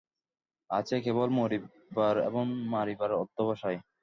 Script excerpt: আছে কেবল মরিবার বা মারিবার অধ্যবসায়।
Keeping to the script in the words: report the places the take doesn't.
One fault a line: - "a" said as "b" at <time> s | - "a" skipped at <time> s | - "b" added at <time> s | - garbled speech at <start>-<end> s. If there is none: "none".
- "বা" said as "এবং" at 2.3 s